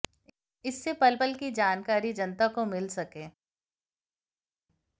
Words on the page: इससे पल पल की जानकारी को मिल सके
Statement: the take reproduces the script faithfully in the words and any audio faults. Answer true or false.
false